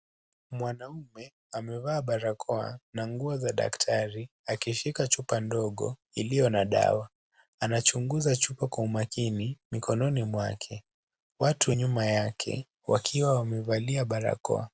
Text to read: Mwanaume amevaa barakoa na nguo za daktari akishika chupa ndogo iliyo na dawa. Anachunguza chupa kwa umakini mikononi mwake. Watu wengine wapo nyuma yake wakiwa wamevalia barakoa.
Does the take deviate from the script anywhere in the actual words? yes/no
yes